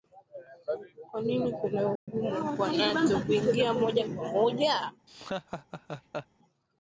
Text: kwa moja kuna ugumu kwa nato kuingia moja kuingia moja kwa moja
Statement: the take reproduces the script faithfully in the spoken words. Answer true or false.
false